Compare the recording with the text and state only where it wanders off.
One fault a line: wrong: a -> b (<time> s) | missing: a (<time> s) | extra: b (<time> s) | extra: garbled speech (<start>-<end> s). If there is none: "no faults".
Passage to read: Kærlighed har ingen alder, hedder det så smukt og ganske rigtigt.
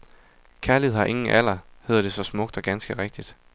no faults